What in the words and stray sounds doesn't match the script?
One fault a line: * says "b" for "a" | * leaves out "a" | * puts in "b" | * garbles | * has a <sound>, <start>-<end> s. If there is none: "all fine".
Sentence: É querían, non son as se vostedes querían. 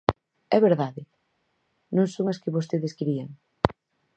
* says "verdade" for "querían"
* says "que" for "se"